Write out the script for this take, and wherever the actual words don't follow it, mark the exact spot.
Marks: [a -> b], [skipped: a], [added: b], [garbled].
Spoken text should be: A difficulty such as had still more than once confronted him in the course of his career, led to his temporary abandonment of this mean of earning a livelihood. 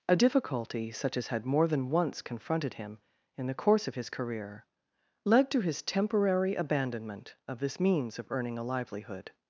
A difficulty such as had [skipped: still] more than once confronted him in the course of his career, led to his temporary abandonment of this [mean -> means] of earning a livelihood.